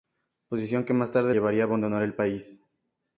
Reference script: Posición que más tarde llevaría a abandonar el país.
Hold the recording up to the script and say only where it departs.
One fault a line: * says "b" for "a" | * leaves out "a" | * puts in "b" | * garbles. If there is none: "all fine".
all fine